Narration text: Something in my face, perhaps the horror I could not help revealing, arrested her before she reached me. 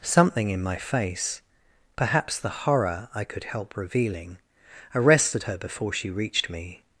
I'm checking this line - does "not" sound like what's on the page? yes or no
no